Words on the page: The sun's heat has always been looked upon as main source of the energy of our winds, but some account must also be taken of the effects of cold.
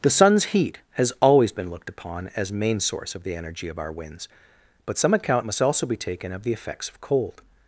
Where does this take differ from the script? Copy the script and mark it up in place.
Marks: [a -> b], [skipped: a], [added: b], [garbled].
The sun's heat has always been looked upon as main source of the energy of our winds, but some account must also be taken of the effects of cold.